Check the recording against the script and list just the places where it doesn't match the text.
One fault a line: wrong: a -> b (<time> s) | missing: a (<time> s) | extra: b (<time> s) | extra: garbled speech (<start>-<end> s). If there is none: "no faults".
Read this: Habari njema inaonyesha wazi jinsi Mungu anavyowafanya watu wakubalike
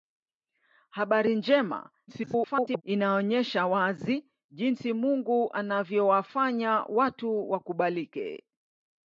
extra: garbled speech (2.1-2.8 s)